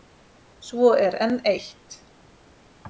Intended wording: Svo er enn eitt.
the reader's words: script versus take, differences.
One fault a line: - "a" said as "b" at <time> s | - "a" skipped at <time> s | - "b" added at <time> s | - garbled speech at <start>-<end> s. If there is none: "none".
none